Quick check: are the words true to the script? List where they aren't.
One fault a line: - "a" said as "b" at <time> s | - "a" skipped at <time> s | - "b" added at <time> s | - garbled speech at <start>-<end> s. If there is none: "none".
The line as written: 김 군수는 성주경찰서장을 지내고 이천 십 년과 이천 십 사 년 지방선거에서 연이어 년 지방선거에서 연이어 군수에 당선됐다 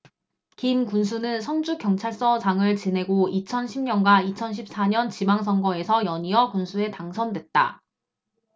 - "년 지방선거에서 연이어" skipped at 6.5 s